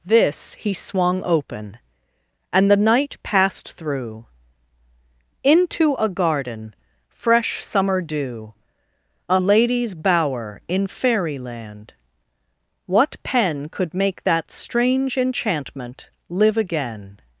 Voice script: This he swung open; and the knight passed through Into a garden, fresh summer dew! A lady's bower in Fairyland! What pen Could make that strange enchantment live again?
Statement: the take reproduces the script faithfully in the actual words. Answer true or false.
true